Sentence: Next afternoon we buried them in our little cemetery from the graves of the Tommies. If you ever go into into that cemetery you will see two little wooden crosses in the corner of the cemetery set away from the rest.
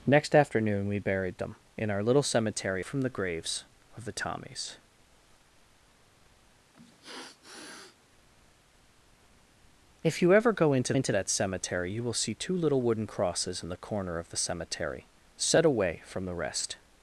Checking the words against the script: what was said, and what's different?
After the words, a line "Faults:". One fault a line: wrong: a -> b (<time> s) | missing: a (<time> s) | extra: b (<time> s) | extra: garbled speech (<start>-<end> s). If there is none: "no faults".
Next afternoon we buried them in our little cemetery from the graves of the Tommies. If you ever go into into that cemetery you will see two little wooden crosses in the corner of the cemetery set away from the rest.
Faults:
no faults